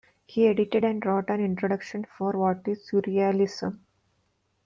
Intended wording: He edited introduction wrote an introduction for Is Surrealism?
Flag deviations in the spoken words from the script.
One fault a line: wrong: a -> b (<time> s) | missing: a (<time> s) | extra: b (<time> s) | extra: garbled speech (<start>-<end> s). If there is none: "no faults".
wrong: introduction -> and (0.8 s)
extra: What (2.3 s)